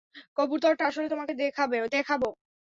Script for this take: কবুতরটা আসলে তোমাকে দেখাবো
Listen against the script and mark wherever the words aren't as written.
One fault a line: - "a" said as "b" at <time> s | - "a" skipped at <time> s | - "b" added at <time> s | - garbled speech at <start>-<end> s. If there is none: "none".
none